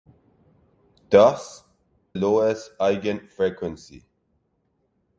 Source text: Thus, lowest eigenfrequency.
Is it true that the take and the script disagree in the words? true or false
false